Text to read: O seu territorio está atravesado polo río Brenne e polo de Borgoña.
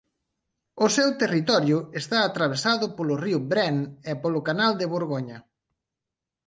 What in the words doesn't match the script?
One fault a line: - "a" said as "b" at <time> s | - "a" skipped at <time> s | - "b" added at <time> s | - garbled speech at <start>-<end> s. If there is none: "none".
- "canal" added at 4.5 s